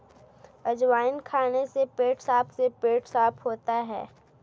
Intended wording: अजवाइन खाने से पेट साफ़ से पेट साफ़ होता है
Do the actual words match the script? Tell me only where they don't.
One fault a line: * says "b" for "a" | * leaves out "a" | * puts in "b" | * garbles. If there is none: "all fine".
all fine